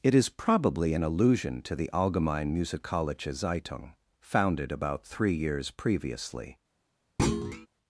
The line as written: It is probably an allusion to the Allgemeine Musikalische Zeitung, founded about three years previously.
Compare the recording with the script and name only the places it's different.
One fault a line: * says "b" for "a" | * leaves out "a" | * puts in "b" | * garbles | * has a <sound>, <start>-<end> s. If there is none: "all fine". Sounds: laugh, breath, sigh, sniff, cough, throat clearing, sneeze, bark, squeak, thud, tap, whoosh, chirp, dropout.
* has a thud, 7.2-7.7 s